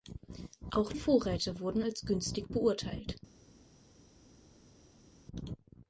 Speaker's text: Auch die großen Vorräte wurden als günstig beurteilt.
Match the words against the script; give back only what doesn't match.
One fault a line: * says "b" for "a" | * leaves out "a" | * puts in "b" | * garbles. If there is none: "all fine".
* leaves out "die großen"